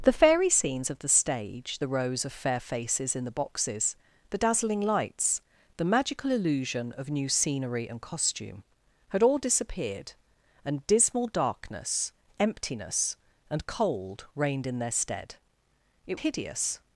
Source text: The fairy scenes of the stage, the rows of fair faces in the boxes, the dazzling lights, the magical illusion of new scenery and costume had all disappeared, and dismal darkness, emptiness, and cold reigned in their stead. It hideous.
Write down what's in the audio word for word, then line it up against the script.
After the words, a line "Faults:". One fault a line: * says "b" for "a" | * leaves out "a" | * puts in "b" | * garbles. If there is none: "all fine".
The fairy scenes of the stage, the rows of fair faces in the boxes, the dazzling lights, the magical illusion of new scenery and costume had all disappeared, and dismal darkness, emptiness, and cold reigned in their stead. It hideous.
Faults:
all fine